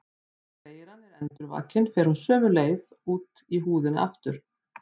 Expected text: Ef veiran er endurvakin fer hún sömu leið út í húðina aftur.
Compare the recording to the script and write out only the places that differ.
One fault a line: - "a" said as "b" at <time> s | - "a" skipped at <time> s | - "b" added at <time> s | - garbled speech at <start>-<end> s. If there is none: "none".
- "Ef" said as "Þegar" at 0.6 s